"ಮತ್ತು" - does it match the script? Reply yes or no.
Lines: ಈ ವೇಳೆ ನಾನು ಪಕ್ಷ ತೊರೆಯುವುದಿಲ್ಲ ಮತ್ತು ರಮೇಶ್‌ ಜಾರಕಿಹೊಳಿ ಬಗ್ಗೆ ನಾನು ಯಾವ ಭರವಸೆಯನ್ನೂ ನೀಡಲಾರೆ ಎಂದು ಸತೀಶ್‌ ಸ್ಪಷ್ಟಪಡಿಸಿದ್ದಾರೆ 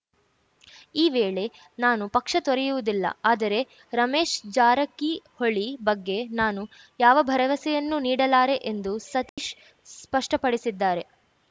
no